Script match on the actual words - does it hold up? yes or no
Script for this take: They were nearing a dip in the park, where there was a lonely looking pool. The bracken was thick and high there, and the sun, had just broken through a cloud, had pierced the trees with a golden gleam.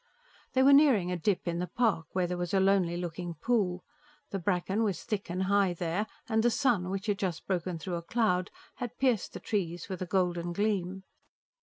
no